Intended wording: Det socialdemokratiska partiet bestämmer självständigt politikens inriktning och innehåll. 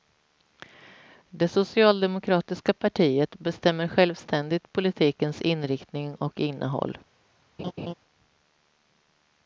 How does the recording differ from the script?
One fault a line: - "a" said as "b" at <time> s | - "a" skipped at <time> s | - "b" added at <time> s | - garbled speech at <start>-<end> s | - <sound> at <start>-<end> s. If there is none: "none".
- laugh at 7.6-7.9 s